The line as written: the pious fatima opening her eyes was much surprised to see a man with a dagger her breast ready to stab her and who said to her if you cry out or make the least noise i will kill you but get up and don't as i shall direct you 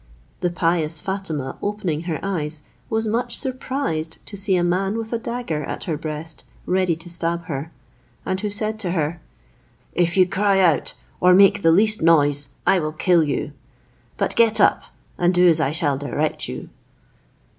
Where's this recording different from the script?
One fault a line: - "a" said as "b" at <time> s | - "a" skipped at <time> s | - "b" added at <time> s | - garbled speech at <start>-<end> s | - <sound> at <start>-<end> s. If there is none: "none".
- "at" added at 5.6 s
- "don't" said as "do" at 15.3 s